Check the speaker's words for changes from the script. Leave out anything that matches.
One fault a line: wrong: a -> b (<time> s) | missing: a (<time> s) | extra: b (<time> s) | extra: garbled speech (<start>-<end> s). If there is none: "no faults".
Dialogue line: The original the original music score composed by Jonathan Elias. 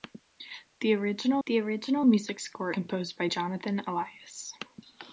no faults